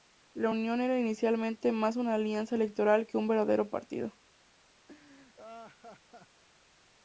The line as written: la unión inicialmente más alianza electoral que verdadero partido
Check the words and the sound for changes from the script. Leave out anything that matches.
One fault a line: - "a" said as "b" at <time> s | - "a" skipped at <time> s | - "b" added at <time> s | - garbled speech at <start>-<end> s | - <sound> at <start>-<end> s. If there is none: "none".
- "era" added at 0.8 s
- "una" added at 2.0 s
- "un" added at 3.2 s
- laugh at 4.9-6.4 s